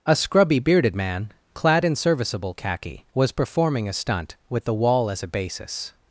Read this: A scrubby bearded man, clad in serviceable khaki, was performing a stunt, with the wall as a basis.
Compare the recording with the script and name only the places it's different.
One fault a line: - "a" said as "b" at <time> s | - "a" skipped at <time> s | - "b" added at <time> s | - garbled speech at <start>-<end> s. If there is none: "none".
none